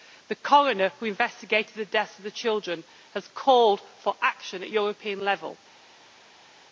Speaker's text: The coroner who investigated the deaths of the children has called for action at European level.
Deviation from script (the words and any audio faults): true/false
false